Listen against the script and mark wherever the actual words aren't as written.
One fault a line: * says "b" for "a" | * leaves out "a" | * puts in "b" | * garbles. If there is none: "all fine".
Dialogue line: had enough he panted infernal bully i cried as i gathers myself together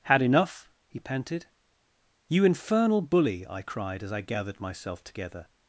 * puts in "you"
* says "gathered" for "gathers"